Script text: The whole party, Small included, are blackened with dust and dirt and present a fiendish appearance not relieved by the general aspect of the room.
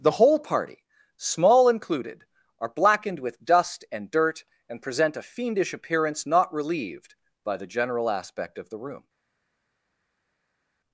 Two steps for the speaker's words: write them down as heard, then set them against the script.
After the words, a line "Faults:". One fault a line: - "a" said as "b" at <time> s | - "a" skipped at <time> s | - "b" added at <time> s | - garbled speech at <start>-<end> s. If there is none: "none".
The whole party, Small included, are blackened with dust and dirt and present a fiendish appearance not relieved by the general aspect of the room.
Faults:
none